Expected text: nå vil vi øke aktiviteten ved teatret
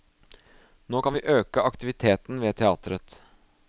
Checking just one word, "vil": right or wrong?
wrong